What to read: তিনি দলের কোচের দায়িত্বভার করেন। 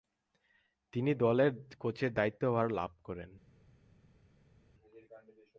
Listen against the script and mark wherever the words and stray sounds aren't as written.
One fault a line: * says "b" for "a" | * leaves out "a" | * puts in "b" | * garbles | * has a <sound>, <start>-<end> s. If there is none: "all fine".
* puts in "লাভ"